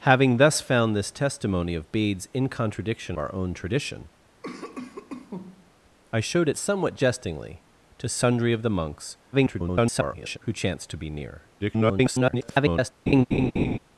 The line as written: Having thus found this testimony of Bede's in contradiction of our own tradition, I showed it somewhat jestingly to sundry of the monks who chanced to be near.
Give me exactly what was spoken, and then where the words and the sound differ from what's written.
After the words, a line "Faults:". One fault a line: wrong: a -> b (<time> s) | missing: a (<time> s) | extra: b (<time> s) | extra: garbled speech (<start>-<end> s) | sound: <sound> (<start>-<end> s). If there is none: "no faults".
Having thus found this testimony of Bede's in contradiction our own tradition, I showed it somewhat jestingly to sundry of the monks [garbled] who chanced to be near. [garbled]
Faults:
missing: of (3.1 s)
sound: cough (4.4-5.7 s)
extra: garbled speech (9.3-10.4 s)
extra: garbled speech (11.6-12.9 s)
sound: laugh (13.1-13.8 s)